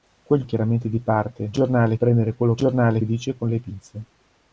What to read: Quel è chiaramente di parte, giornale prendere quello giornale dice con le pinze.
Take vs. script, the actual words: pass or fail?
pass